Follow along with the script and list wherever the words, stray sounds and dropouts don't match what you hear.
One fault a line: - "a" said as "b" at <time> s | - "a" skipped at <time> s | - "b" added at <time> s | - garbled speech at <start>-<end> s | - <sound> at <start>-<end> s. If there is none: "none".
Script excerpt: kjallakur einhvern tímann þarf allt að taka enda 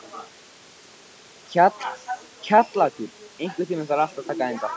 none